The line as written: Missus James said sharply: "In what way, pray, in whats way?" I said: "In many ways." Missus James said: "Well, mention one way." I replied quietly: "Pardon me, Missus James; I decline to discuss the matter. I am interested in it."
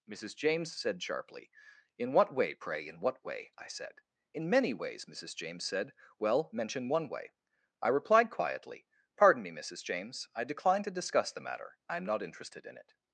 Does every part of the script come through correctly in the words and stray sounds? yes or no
no